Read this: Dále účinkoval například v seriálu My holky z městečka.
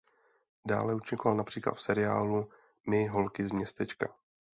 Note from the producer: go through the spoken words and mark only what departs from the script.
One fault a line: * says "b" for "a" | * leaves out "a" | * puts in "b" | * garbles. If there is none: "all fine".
all fine